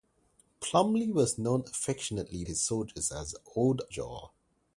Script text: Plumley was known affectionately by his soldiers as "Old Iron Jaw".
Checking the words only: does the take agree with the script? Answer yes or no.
no